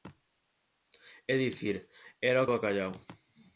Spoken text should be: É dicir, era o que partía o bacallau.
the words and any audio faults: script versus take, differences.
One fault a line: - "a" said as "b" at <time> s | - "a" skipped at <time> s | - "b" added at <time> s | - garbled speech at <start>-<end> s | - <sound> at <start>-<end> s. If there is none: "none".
- "que partía" skipped at 2.5 s